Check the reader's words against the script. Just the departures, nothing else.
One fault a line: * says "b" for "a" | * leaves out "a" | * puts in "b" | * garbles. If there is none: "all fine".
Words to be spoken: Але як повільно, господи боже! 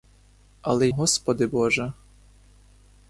* leaves out "як повільно"